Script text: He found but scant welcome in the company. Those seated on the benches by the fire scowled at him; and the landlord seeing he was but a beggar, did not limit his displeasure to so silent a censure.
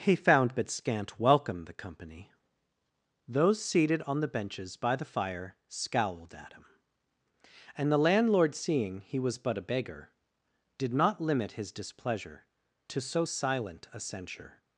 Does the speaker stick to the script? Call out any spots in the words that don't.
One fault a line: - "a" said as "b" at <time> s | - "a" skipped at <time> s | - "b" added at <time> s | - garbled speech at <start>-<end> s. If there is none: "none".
- "in" skipped at 1.6 s